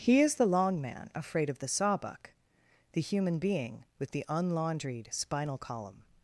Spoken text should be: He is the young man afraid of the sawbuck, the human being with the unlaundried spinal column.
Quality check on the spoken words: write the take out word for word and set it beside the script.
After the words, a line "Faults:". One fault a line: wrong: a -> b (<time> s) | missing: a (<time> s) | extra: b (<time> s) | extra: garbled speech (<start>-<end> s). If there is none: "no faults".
He is the long man afraid of the sawbuck, the human being with the unlaundried spinal column.
Faults:
wrong: young -> long (0.5 s)